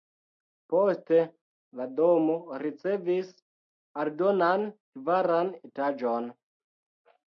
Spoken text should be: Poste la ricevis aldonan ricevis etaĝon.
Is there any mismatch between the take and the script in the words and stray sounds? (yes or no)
yes